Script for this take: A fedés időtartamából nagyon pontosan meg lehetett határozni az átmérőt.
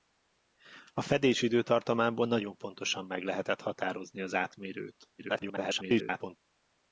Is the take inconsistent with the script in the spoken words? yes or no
yes